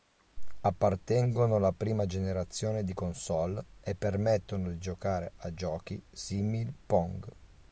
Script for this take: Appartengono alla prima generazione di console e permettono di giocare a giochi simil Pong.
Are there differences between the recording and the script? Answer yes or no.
no